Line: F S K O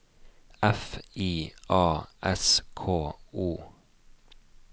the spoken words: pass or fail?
fail